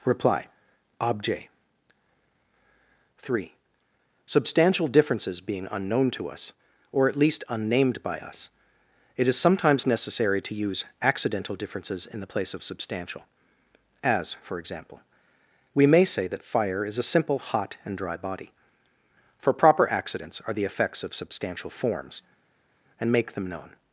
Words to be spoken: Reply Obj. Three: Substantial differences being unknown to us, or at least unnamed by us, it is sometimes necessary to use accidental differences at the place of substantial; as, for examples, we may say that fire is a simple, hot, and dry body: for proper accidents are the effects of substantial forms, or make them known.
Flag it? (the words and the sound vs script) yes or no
yes